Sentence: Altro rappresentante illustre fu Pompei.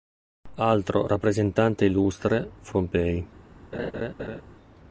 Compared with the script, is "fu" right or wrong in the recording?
right